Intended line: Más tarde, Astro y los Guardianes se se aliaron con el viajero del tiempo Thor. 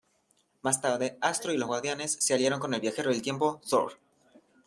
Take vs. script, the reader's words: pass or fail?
fail